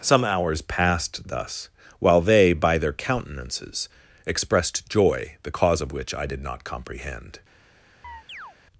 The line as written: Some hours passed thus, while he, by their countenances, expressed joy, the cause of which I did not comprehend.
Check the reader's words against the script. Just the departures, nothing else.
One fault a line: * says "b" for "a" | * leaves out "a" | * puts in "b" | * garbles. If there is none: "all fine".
* says "they" for "he"